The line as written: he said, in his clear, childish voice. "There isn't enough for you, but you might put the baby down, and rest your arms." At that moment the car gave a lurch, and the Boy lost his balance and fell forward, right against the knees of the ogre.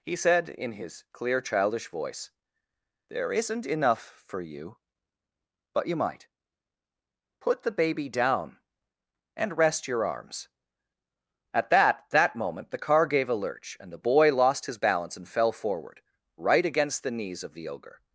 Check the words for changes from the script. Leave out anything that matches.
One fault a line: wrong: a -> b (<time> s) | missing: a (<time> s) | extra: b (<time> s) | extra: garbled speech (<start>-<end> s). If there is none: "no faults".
extra: that (12.1 s)